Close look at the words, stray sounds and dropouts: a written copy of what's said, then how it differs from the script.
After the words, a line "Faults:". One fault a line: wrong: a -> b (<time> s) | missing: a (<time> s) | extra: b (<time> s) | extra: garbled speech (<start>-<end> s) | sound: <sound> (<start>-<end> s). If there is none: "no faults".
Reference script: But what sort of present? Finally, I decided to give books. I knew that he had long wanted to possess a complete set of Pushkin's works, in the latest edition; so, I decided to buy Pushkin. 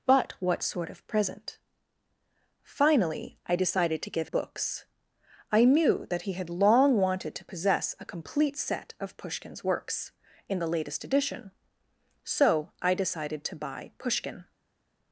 But what sort of present? Finally, I decided to give books. I knew that he had long wanted to possess a complete set of Pushkin's works, in the latest edition; so, I decided to buy Pushkin.
Faults:
no faults